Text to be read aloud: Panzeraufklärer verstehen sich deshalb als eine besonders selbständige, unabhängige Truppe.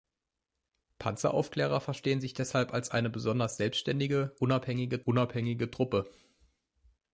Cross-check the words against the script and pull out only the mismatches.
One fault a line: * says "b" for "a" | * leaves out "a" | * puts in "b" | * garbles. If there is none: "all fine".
* puts in "unabhängige"